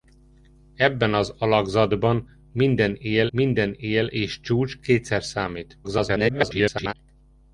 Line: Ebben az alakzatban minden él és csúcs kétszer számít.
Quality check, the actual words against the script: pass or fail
fail